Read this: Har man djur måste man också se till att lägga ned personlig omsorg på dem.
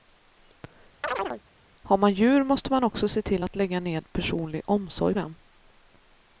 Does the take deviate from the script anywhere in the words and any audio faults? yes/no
yes